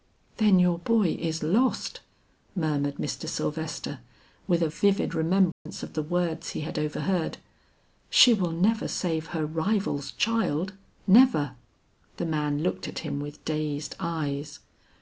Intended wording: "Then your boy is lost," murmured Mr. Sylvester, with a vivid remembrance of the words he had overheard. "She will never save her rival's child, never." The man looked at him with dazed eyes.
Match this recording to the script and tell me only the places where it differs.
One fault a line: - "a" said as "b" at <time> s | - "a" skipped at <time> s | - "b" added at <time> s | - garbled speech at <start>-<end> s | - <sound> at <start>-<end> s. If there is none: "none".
- dropout at 5.5-5.7 s